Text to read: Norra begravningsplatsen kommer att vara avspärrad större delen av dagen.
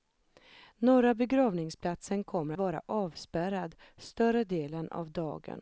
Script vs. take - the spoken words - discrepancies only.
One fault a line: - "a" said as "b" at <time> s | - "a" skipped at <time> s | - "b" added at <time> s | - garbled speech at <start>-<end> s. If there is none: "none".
- "att" skipped at 2.5 s